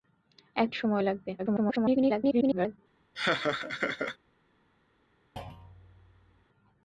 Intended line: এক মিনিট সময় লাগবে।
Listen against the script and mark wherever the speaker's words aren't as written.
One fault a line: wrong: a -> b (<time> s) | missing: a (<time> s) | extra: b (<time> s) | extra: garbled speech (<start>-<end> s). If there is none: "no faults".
missing: মিনিট (0.7 s)
extra: garbled speech (1.4-2.8 s)